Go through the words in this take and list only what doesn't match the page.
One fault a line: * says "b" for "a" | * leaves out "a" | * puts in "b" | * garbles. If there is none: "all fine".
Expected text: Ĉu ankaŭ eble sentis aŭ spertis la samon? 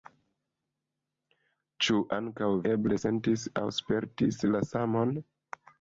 all fine